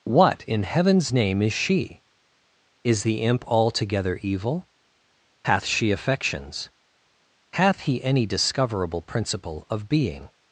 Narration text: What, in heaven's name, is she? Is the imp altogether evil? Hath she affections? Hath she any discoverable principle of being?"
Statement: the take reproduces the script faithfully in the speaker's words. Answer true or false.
false